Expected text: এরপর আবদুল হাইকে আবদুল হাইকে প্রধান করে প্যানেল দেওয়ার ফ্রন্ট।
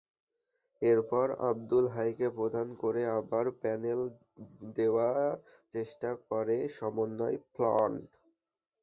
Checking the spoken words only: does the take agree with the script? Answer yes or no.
no